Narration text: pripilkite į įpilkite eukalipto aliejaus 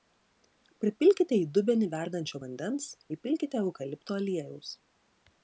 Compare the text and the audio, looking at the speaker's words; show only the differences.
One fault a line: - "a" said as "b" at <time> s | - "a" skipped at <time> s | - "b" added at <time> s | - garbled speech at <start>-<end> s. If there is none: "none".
- "dubenį verdančio vandens" added at 1.6 s